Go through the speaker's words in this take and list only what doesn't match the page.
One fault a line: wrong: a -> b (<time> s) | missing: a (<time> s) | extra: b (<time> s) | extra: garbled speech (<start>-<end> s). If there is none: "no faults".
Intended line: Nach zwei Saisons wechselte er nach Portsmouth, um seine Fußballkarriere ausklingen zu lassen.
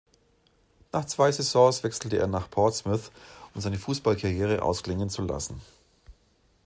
no faults